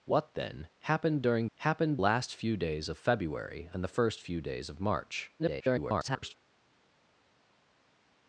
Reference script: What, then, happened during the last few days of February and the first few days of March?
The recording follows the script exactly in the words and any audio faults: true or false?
false